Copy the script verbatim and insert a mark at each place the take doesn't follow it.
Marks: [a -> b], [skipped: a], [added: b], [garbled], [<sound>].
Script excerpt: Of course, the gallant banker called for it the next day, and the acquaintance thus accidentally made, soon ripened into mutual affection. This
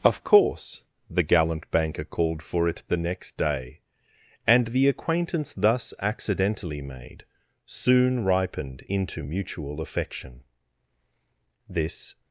Of course, the gallant banker called for it the next day, and the acquaintance thus accidentally made, soon ripened into mutual affection. This